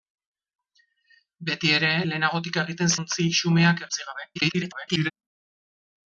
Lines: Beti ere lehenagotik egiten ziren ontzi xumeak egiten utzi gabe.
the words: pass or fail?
fail